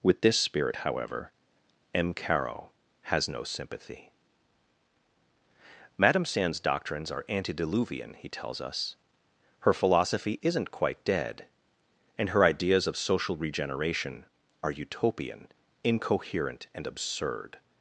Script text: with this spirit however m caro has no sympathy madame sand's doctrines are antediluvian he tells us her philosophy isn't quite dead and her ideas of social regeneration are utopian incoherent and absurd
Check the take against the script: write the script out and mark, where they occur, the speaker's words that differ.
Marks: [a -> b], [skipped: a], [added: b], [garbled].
with this spirit however m caro has no sympathy madame sand's doctrines are antediluvian he tells us her philosophy isn't quite dead and her ideas of social regeneration are utopian incoherent and absurd